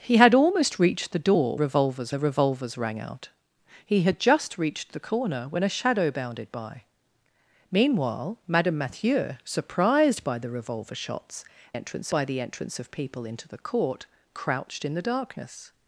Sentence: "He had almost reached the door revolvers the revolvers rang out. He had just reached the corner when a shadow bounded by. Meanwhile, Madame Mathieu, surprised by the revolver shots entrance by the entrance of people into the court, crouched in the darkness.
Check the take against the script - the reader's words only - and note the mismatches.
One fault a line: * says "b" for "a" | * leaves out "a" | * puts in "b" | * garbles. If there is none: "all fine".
all fine